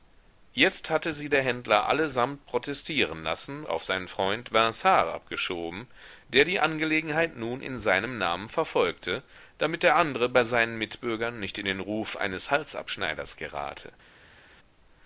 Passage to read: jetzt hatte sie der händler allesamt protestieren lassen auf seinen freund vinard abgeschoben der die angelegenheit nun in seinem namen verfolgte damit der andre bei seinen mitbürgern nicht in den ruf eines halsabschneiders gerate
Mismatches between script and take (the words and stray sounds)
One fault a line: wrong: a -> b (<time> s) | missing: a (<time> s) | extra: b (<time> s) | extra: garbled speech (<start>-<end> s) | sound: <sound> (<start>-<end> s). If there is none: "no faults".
no faults